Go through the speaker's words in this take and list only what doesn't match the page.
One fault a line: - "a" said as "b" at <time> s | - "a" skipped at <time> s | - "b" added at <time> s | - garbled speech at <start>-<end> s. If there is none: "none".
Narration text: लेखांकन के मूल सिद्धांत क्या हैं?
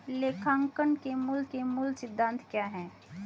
- "के मूल" added at 1.4 s